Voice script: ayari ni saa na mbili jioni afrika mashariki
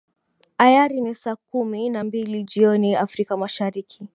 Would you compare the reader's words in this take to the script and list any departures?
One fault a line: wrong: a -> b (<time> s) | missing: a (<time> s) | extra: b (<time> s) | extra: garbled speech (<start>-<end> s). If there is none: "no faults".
extra: kumi (1.4 s)